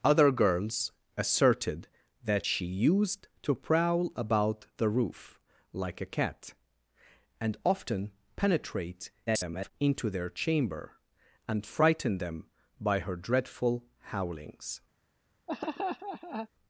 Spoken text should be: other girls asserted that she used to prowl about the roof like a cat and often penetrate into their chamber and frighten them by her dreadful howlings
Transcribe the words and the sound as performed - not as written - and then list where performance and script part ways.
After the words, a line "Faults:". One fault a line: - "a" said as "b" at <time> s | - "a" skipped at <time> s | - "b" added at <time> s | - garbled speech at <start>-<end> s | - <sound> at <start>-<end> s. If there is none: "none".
other girls asserted that she used to prowl about the roof like a cat and often penetrate [garbled] into their chamber and frighten them by her dreadful howlings
Faults:
- garbled speech at 9.3-9.7 s
- laugh at 15.5-16.5 s